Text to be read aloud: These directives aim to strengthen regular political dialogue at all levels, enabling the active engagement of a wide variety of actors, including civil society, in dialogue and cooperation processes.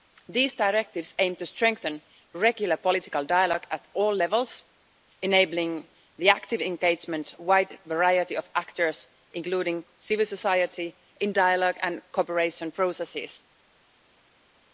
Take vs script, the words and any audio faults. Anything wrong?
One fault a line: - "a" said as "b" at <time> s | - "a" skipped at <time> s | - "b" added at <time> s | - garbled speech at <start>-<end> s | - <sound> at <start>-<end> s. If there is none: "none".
- "of" skipped at 7.3 s